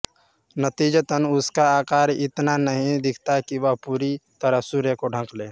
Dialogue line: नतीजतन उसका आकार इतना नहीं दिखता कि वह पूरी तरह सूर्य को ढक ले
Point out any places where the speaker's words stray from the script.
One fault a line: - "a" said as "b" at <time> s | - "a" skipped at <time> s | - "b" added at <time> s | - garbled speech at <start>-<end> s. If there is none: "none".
none